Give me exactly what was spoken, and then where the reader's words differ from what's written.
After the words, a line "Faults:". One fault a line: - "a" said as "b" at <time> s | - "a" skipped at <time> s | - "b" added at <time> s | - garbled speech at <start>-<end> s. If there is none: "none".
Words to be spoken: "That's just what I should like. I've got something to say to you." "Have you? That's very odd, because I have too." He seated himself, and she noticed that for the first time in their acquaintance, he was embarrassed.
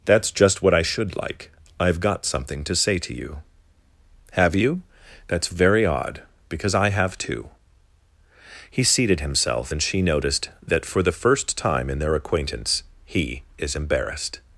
"That's just what I should like. I've got something to say to you." "Have you? That's very odd, because I have too." He seated himself, and she noticed that for the first time in their acquaintance, he is embarrassed.
Faults:
- "was" said as "is" at 13.6 s